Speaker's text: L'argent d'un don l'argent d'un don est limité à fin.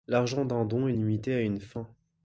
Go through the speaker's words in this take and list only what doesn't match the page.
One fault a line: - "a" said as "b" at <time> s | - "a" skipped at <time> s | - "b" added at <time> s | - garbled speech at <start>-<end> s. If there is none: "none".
- "l'argent d'un don" skipped at 0.9 s
- "une" added at 1.4 s